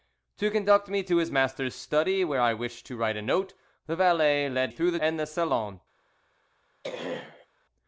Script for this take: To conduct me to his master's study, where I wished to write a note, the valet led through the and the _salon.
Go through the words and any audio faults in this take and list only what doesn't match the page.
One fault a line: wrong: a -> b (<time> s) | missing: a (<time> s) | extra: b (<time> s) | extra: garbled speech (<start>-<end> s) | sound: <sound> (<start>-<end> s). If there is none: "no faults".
sound: throat clearing (6.8-7.5 s)